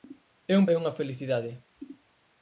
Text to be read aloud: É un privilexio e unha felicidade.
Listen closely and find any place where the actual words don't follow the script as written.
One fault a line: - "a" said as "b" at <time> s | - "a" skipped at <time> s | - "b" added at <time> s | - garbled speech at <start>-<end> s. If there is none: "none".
- "privilexio" skipped at 0.7 s